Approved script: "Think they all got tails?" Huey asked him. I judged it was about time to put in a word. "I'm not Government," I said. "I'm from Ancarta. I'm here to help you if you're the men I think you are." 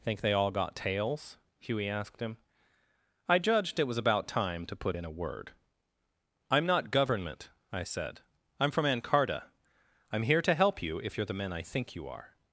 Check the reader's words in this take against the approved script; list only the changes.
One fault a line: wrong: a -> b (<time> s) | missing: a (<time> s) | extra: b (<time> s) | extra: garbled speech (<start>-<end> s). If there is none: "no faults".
no faults